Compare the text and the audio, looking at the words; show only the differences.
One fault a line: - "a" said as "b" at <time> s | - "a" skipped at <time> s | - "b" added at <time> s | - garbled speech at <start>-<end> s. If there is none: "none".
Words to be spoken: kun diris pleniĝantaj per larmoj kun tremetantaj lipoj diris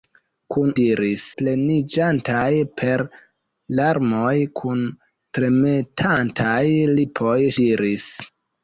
none